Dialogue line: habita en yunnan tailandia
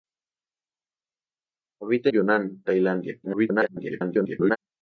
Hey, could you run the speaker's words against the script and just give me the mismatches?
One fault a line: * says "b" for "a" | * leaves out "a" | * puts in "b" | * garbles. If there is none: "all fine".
* leaves out "en"
* garbles